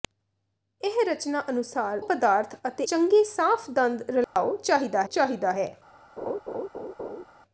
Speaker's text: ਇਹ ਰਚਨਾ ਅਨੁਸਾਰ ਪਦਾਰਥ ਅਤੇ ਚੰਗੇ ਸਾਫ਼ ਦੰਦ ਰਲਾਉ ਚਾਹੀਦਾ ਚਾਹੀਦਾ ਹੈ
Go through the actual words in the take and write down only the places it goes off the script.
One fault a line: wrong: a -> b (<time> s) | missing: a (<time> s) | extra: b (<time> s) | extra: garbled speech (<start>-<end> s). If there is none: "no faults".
no faults